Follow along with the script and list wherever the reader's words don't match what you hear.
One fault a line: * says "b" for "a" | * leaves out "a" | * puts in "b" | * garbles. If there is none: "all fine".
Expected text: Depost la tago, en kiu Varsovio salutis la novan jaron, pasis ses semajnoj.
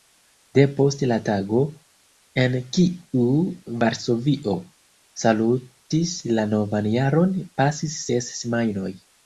all fine